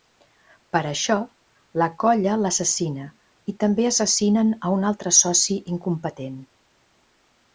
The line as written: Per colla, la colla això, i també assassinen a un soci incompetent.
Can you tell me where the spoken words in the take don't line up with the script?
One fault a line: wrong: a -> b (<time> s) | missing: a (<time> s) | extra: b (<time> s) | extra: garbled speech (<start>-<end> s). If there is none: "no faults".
wrong: colla -> això (0.9 s)
wrong: això -> l'assassina (2.5 s)
extra: altre (4.9 s)